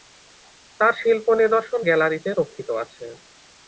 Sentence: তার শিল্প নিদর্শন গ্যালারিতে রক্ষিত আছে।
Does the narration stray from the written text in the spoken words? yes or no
no